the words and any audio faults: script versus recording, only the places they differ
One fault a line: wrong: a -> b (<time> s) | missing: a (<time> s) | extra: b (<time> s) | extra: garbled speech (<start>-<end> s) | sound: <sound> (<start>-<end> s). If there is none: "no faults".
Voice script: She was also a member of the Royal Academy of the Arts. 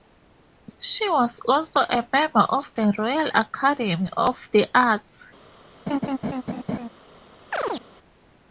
sound: laugh (5.9-6.9 s)
sound: chirp (7.5-7.8 s)